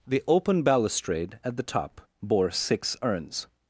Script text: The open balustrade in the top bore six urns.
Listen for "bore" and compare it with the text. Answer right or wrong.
right